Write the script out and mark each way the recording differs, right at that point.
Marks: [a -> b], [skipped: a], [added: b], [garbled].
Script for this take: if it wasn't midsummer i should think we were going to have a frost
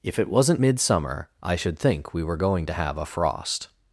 if it wasn't midsummer i should think we were going to have a frost